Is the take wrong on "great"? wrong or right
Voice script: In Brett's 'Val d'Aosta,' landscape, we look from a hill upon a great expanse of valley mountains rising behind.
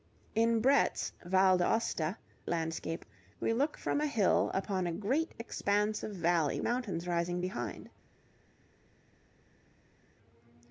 right